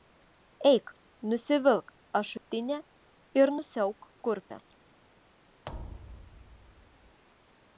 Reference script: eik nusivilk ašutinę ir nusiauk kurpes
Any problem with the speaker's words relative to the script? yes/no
no